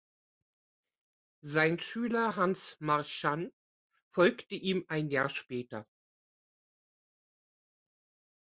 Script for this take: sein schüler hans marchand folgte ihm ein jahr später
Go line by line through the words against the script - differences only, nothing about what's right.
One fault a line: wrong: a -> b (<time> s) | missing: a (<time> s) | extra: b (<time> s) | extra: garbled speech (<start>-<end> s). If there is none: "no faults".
no faults